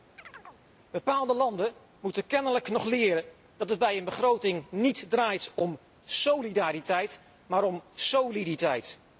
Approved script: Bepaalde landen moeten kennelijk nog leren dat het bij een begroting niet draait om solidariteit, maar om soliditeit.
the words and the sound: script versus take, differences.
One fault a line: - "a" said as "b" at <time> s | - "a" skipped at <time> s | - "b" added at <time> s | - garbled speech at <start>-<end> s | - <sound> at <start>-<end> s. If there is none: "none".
- chirp at 0.2-0.6 s